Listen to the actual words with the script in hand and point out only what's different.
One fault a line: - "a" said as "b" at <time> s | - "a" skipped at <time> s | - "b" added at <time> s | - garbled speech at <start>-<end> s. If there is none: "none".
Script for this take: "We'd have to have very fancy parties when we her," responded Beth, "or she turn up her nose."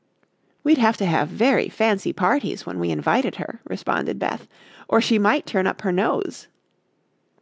- "invited" added at 2.9 s
- "might" added at 5.2 s